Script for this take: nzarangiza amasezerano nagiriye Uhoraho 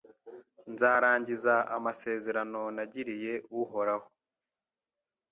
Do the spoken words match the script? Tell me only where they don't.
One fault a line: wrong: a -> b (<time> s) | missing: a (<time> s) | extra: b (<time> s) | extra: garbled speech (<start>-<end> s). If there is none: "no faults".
no faults